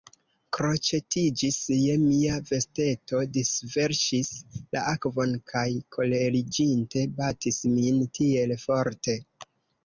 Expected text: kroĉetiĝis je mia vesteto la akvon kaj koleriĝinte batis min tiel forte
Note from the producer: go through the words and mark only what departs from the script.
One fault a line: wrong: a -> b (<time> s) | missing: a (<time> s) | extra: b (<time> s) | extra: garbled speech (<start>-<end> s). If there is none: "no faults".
extra: disverŝis (3.3 s)